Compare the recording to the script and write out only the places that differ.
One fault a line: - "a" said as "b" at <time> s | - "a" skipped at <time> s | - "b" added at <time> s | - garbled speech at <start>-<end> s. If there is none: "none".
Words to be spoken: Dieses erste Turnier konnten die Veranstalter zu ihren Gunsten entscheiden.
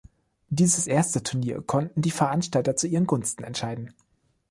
none